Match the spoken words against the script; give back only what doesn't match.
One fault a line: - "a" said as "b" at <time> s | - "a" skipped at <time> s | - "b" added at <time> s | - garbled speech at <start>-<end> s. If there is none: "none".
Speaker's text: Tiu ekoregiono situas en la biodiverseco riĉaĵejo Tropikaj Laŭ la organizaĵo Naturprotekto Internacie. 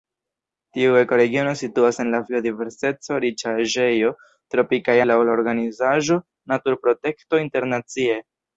none